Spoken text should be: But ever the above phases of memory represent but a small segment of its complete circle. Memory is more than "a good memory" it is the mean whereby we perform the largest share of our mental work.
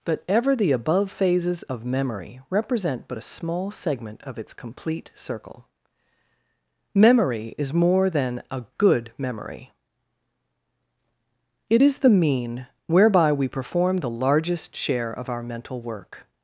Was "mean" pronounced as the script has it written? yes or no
yes